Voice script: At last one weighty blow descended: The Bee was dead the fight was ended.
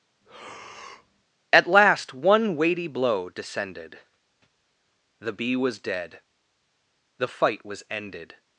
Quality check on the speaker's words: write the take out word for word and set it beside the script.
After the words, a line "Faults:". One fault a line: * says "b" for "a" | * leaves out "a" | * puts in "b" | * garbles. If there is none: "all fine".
At last one weighty blow descended: The Bee was dead the fight was ended.
Faults:
all fine